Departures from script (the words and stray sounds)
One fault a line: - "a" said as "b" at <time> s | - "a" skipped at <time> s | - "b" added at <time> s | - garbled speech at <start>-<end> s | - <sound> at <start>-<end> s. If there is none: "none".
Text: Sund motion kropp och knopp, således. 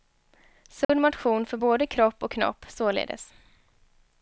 - dropout at 0.8-0.9 s
- "för både" added at 1.4 s